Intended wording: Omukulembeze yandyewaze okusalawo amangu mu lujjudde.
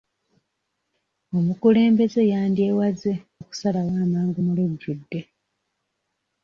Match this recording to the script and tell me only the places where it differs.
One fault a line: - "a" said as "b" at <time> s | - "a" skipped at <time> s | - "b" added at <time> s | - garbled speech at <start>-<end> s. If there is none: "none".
none